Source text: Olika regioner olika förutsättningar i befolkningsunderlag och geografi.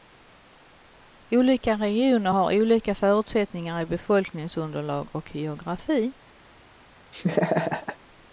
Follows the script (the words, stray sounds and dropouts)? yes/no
no